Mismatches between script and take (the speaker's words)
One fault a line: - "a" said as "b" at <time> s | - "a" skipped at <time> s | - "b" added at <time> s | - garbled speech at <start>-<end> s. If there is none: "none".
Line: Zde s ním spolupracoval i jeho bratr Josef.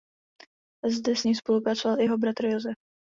none